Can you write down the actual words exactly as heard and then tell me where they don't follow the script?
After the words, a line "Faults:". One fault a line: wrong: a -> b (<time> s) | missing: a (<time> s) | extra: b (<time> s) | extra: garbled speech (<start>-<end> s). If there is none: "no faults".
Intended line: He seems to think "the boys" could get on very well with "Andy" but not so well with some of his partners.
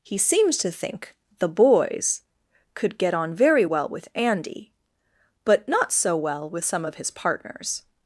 He seems to think "the boys" could get on very well with "Andy" but not so well with some of his partners.
Faults:
no faults